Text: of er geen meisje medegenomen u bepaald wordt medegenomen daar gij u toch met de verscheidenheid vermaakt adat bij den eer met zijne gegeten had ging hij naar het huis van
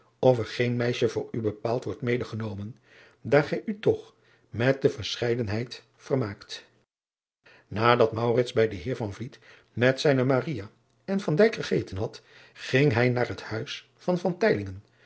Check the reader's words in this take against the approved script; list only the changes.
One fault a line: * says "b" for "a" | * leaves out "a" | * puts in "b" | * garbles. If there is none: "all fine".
* says "voor" for "medegenomen"
* puts in "en"